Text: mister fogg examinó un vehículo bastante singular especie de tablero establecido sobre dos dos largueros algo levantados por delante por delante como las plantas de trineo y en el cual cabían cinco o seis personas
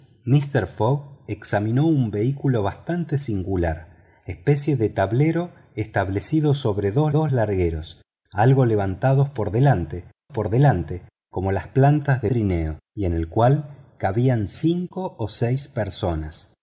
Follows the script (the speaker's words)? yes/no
yes